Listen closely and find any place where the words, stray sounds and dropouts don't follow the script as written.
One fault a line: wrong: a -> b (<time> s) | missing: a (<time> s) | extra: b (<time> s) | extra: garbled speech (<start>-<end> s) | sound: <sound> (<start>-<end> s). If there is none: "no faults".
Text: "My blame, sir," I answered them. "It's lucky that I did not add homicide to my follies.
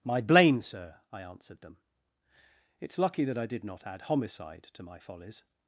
no faults